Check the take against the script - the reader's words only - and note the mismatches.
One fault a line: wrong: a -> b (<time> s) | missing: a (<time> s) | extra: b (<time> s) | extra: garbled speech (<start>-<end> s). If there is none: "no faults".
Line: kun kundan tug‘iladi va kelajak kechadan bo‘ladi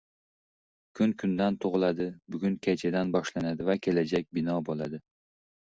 extra: bugun kechadan boshlanadi (2.4 s)
wrong: kechadan -> bino (4.4 s)